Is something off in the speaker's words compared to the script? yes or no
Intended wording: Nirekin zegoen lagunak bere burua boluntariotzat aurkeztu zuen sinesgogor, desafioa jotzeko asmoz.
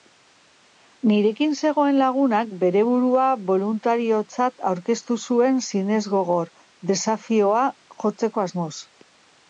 no